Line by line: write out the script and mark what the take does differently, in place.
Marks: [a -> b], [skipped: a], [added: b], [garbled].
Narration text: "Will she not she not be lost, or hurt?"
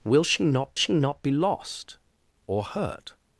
"Will she not she not be lost, or hurt?"